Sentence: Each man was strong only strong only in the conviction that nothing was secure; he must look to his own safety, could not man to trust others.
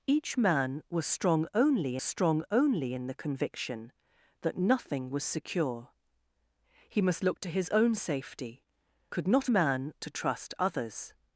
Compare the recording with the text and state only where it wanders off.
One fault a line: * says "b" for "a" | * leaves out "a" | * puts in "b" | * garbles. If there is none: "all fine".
all fine